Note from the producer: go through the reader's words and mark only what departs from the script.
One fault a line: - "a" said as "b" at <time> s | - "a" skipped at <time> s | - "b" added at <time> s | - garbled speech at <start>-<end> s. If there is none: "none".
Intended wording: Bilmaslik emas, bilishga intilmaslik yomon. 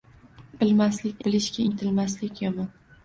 - "emas" skipped at 1.2 s